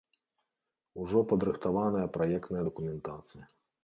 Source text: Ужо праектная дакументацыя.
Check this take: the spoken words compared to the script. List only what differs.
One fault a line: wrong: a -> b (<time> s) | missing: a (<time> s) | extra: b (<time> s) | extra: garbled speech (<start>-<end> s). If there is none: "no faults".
extra: падрыхтаваная (1.3 s)